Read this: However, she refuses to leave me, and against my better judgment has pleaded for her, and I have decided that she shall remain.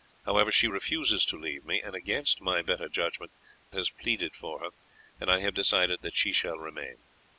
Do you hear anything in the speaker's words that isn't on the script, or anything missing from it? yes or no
no